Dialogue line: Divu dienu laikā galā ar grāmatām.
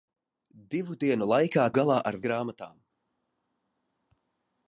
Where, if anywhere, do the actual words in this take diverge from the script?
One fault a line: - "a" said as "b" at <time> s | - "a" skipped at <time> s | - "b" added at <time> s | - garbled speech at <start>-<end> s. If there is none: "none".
none